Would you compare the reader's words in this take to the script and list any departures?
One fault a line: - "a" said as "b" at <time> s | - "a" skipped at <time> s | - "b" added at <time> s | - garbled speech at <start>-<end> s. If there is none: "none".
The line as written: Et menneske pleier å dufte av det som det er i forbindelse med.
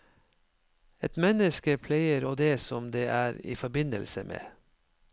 - "dufte av" skipped at 2.3 s